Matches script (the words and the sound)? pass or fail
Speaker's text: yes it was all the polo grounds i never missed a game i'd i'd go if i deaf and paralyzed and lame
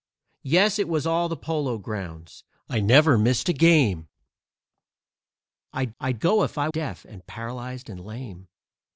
pass